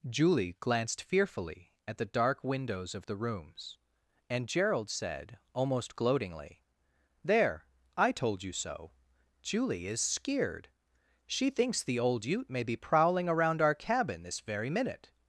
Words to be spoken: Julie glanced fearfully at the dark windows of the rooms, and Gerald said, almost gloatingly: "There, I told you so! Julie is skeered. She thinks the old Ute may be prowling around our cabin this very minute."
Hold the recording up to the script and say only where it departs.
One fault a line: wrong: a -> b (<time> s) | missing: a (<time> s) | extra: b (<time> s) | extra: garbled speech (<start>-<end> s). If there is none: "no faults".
no faults